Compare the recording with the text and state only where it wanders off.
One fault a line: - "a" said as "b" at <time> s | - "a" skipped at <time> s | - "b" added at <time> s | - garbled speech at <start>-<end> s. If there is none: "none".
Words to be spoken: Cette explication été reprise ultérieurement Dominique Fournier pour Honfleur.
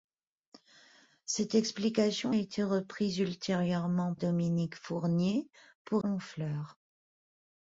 none